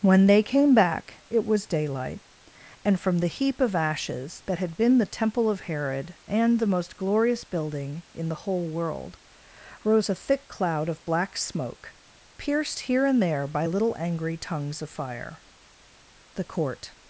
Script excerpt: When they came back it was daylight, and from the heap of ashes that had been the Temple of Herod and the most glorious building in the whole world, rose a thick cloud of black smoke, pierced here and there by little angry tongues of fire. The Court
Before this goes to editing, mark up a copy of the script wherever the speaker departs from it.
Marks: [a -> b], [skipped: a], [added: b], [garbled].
When they came back it was daylight, and from the heap of ashes that had been the Temple of Herod and the most glorious building in the whole world, rose a thick cloud of black smoke, pierced here and there by little angry tongues of fire. The Court